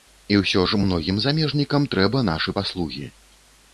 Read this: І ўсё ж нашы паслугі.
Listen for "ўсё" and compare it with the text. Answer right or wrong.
right